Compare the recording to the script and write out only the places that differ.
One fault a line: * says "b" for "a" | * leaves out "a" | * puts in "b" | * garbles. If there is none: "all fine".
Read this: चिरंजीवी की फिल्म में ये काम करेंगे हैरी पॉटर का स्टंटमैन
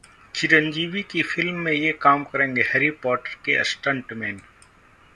* says "के" for "का"